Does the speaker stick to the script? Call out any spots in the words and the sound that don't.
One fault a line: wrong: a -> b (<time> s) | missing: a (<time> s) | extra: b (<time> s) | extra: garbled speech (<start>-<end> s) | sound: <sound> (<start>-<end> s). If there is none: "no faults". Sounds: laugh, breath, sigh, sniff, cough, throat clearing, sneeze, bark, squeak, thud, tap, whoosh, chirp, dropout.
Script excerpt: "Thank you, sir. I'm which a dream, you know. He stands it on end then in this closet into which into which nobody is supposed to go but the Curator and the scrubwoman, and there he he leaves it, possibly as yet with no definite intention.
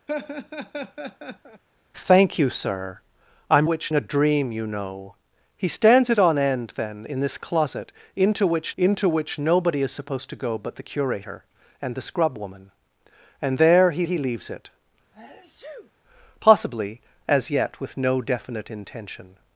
sound: laugh (0.1-1.6 s)
sound: sneeze (15.1-15.9 s)